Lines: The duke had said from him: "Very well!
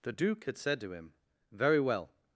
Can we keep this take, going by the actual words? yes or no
no